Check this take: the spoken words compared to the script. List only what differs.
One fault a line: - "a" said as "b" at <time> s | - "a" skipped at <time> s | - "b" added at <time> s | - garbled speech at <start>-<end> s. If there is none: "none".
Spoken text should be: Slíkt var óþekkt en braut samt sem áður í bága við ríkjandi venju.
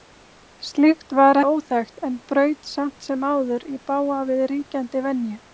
none